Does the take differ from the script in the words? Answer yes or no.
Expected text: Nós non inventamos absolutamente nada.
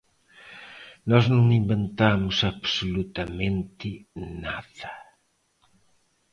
no